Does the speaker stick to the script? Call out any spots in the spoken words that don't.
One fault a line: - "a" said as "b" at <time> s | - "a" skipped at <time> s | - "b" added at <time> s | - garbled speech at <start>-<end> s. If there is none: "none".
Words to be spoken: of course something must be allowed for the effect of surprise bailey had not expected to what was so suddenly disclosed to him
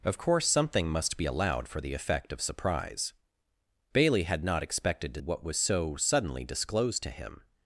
none